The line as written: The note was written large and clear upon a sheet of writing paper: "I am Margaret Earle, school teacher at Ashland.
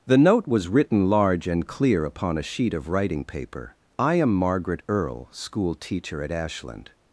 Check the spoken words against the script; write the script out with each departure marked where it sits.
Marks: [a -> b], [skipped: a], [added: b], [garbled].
The note was written large and clear upon a sheet of writing paper: "I am Margaret Earle, school teacher at Ashland.